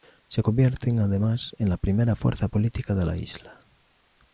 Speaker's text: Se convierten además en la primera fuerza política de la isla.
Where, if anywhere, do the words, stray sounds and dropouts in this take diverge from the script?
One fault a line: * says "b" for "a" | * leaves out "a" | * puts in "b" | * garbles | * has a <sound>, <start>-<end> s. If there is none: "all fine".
all fine